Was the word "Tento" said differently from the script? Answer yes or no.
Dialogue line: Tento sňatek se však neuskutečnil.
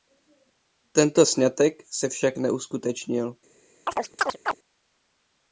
no